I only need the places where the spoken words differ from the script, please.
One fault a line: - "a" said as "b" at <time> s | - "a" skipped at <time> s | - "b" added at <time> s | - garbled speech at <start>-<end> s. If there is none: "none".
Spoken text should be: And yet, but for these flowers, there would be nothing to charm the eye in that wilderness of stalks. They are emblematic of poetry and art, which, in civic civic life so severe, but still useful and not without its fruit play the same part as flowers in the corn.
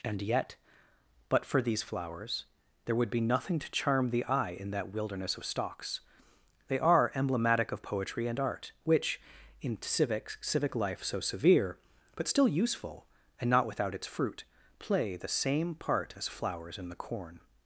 none